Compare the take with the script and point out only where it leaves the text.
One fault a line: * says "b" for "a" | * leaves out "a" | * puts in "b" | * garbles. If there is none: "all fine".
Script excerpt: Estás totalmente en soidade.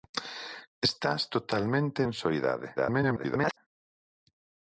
* garbles